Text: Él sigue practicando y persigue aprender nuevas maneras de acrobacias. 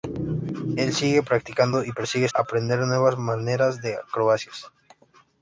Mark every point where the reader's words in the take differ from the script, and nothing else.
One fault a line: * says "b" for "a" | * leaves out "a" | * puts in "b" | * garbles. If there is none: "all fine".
all fine